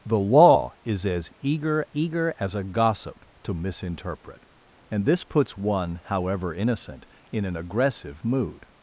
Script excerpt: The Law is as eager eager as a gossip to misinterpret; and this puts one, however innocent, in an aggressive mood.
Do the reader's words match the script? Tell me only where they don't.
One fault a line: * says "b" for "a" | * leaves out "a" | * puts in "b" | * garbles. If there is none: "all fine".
all fine